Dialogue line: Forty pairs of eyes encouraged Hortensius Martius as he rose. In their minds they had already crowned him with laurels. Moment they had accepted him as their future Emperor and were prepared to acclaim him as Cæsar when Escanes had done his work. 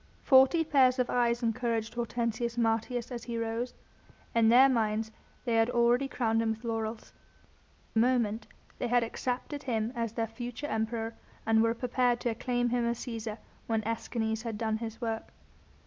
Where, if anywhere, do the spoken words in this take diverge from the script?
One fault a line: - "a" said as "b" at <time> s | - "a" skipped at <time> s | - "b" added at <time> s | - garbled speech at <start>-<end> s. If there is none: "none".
none